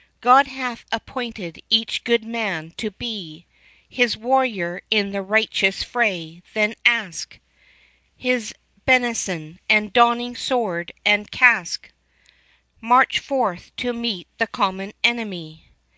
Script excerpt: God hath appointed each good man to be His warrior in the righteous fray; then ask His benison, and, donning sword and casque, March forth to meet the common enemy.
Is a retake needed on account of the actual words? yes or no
no